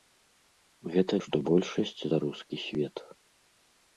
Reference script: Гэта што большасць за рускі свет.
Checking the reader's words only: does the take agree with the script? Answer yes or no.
yes